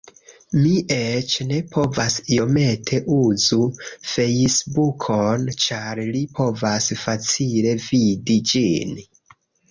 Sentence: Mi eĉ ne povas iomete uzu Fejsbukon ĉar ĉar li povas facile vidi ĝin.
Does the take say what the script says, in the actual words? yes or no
no